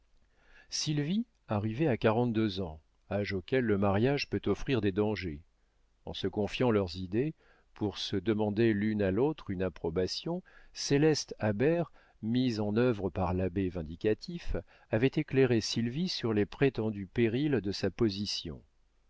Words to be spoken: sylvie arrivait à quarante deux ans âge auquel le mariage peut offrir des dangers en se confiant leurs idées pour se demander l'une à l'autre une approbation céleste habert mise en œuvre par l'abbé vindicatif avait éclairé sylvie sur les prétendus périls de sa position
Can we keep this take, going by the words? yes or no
yes